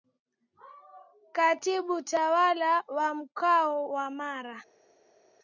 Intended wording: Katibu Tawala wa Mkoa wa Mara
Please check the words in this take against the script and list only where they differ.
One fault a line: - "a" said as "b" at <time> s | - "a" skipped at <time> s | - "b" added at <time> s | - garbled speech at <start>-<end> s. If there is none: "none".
none